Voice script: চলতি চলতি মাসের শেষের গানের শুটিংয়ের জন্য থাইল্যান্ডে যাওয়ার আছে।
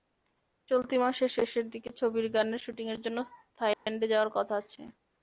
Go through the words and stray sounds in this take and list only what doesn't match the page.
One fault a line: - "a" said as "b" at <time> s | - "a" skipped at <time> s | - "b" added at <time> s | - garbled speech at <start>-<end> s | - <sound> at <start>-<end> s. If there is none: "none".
- "চলতি" skipped at 0.9 s
- "দিকে ছবির" added at 1.7 s
- dropout at 3.7-3.9 s
- "কথা" added at 4.4 s